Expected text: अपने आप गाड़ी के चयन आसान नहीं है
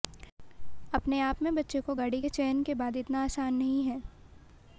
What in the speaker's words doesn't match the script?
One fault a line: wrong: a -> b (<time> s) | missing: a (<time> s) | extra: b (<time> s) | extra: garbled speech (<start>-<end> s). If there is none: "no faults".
extra: में बच्चे को (1.4 s)
extra: के बाद इतना (2.6 s)